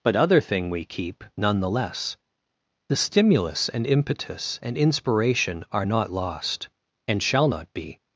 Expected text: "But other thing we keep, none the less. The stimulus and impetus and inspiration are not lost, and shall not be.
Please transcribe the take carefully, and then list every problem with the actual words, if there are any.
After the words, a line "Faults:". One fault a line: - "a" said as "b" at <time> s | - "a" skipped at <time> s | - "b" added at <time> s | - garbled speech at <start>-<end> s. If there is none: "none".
"But other thing we keep, none the less. The stimulus and impetus and inspiration are not lost, and shall not be.
Faults:
none